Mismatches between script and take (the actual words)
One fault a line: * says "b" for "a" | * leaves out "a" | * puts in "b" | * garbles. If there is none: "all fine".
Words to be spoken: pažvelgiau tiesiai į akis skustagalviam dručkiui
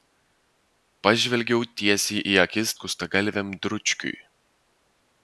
all fine